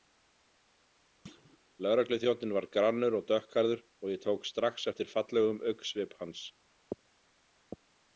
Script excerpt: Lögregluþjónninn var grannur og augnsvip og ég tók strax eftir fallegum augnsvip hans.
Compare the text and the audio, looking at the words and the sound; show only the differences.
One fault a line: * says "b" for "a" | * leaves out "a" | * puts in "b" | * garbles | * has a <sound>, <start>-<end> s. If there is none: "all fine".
* has a thud, 1.2-1.6 s
* says "dökkhærður" for "augnsvip"